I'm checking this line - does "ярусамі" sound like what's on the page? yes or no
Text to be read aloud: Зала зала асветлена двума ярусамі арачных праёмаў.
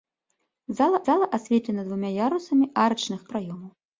yes